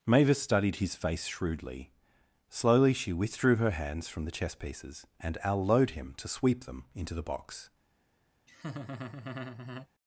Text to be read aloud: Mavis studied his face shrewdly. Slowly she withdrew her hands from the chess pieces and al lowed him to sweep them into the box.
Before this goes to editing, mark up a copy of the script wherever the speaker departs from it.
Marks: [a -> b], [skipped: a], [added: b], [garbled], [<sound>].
Mavis studied his face shrewdly. Slowly she withdrew her hands from the chess pieces and al lowed him to sweep them into the box. [laugh]